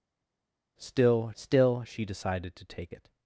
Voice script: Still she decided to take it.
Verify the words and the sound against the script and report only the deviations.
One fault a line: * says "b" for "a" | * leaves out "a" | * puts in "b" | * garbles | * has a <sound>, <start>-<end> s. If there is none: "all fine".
* puts in "still"